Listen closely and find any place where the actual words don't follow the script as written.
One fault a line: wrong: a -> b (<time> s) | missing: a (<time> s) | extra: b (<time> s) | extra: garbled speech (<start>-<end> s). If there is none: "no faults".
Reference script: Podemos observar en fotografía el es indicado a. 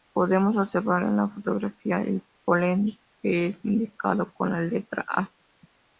extra: la (1.2 s)
extra: polen que (2.4 s)
extra: con la letra (4.3 s)